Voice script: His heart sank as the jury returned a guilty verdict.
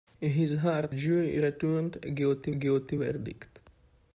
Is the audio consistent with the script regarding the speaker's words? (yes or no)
no